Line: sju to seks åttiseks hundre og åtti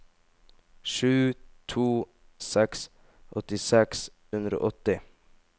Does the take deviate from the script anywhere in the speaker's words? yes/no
no